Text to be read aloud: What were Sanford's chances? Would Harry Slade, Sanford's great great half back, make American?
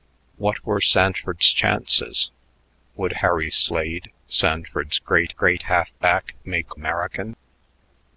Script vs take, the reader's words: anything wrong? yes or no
no